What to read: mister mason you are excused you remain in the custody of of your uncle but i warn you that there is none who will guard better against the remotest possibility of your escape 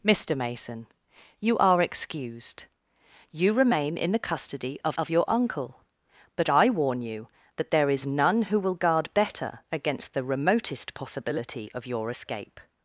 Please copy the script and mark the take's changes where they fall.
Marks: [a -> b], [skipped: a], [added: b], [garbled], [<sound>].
mister mason you are excused you remain in the custody of of your uncle but i warn you that there is none who will guard better against the remotest possibility of your escape